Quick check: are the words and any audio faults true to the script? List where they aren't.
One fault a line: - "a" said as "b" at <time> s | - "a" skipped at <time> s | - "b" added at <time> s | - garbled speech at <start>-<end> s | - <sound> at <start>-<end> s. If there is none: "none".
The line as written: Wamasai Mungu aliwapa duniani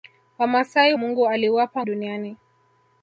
none